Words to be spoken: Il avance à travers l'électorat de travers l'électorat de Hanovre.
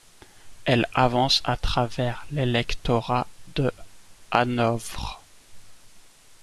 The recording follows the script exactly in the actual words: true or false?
false